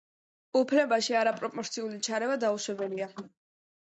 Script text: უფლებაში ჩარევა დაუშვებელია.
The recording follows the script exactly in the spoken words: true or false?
false